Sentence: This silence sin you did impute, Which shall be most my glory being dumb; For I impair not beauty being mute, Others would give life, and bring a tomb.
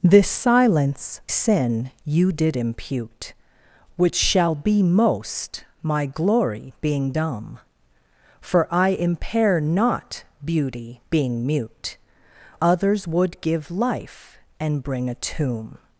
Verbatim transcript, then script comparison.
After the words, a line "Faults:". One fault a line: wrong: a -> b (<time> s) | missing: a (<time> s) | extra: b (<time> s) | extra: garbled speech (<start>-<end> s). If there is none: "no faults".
This silence sin you did impute, Which shall be most my glory being dumb; For I impair not beauty being mute, Others would give life, and bring a tomb.
Faults:
no faults